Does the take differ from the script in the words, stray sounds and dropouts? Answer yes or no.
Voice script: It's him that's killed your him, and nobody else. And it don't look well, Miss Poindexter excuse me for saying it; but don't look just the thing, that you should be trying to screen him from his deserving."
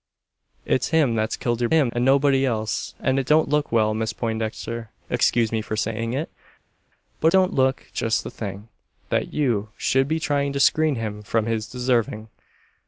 no